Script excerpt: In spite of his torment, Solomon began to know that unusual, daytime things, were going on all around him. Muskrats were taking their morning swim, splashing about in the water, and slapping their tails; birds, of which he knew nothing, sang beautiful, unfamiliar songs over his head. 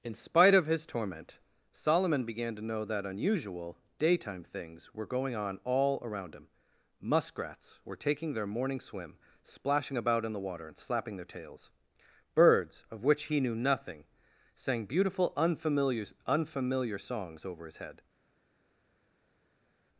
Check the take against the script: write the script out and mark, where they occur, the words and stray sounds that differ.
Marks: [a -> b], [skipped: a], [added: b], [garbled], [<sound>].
In spite of his torment, Solomon began to know that unusual, daytime things, were going on all around him. Muskrats were taking their morning swim, splashing about in the water, and slapping their tails; birds, of which he knew nothing, sang beautiful, unfamiliar [added: unfamiliar] songs over his head.